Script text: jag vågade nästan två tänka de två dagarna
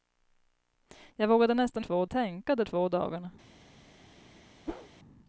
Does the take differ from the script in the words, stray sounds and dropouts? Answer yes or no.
yes